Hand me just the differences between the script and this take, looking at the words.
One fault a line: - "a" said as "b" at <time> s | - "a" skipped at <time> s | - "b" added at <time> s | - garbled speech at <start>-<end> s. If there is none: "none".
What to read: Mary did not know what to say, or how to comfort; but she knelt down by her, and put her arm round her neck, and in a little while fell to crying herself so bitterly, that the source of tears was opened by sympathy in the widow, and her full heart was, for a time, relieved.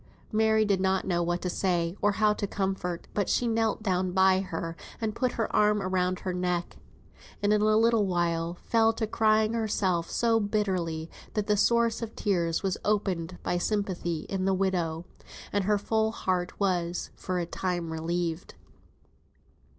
none